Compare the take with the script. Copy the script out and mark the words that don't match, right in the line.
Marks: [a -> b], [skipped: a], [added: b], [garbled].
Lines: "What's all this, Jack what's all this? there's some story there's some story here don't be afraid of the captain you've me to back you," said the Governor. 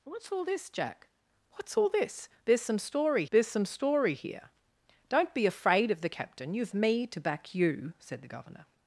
"What's all this, Jack what's all this? there's some story there's some story here don't be afraid of the captain you've me to back you," said the Governor.